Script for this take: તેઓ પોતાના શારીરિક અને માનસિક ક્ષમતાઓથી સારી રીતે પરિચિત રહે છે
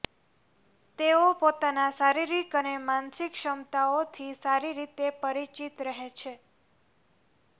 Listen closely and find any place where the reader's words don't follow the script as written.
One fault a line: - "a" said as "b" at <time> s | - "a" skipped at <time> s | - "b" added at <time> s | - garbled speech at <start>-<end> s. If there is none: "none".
none